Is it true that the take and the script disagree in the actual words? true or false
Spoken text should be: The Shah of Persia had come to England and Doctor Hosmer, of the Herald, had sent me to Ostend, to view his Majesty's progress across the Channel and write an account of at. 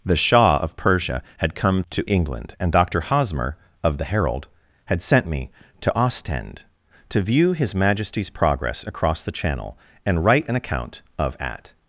false